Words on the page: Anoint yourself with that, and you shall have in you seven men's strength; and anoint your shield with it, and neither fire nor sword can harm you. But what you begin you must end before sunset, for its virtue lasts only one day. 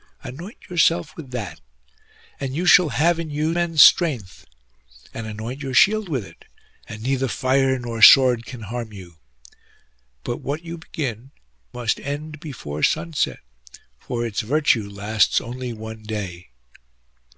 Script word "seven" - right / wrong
wrong